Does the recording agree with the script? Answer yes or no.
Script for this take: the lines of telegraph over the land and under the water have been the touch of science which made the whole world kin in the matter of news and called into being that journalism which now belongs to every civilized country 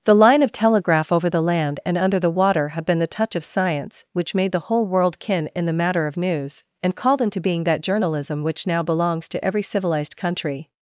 no